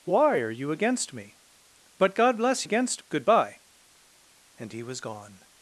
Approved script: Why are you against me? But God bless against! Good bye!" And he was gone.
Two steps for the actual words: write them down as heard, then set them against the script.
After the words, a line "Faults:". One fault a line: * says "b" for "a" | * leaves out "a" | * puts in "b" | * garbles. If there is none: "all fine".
Why are you against me? But God bless against! Good bye!" And he was gone.
Faults:
all fine